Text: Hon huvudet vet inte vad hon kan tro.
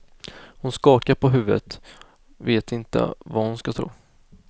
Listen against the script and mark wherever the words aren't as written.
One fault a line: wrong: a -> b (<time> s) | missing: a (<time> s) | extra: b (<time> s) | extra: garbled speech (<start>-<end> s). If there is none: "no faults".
extra: skakar på (0.7 s)
wrong: kan -> ska (3.6 s)